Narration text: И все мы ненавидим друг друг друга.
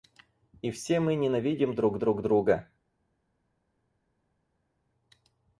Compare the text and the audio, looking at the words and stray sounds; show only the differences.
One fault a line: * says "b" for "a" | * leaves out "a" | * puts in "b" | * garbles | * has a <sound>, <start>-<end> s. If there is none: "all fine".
all fine